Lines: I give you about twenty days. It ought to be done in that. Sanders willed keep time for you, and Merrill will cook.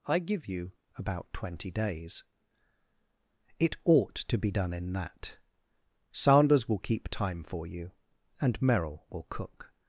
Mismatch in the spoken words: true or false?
true